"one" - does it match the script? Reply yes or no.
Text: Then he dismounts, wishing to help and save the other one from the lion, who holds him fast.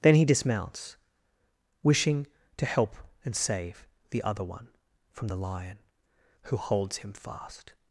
yes